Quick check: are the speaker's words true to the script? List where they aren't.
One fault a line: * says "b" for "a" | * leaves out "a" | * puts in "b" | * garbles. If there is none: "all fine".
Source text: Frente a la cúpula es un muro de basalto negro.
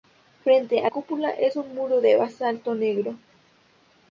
* leaves out "la"